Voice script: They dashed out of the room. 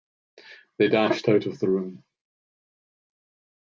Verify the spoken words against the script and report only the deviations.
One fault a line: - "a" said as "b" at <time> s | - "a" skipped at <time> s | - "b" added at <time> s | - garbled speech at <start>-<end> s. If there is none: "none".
none